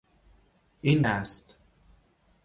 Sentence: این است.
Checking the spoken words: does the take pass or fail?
pass